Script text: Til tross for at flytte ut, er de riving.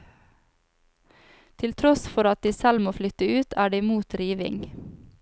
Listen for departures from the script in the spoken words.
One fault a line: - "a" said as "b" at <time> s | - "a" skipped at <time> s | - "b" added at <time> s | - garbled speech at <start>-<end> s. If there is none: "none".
- "de selv må" added at 2.4 s
- "mot" added at 3.8 s